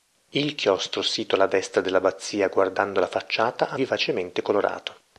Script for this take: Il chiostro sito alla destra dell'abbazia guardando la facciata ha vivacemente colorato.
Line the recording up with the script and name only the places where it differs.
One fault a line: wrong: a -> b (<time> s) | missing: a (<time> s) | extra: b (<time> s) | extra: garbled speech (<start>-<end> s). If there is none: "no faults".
no faults